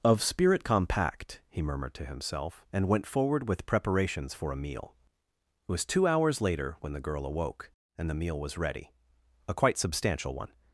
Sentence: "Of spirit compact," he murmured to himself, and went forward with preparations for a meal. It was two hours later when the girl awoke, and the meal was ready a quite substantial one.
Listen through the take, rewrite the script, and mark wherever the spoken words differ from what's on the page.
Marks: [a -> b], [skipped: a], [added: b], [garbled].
"Of spirit compact," he murmured to himself, and went forward with preparations for a meal. It was two hours later when the girl awoke, and the meal was ready a quite substantial one.